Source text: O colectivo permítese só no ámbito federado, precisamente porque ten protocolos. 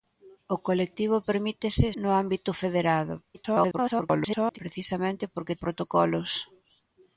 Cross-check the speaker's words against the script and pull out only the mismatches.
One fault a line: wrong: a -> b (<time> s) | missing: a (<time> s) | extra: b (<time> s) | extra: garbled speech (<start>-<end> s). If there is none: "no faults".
missing: só (1.9 s)
extra: garbled speech (3.3-4.6 s)
missing: ten (5.6 s)